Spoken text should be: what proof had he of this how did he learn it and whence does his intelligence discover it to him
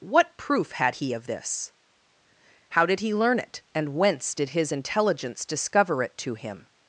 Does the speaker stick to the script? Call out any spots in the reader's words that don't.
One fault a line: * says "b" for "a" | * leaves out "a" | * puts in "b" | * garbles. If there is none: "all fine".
* says "did" for "does"